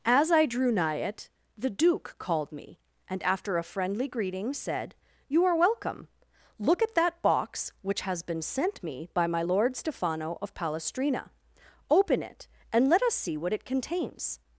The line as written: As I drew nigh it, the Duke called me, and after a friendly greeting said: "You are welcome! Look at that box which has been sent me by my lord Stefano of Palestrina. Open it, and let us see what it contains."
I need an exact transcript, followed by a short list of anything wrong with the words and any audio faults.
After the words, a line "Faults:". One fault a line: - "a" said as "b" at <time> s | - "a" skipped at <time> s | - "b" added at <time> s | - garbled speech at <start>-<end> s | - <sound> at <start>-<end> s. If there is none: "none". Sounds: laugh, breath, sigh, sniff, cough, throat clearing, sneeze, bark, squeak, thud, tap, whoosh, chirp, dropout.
As I drew nigh it, the Duke called me, and after a friendly greeting said: "You are welcome! Look at that box which has been sent me by my lord Stefano of Palestrina. Open it, and let us see what it contains."
Faults:
none